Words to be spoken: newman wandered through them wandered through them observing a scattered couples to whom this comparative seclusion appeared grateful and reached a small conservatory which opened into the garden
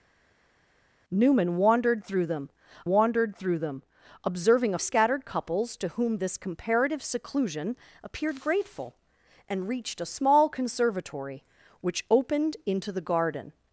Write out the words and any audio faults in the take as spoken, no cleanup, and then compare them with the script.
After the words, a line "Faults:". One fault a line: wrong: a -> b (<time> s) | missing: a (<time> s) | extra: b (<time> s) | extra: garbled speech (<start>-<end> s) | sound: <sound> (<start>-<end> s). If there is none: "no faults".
newman wandered through them wandered through them observing a scattered couples to whom this comparative seclusion appeared grateful and reached a small conservatory which opened into the garden
Faults:
no faults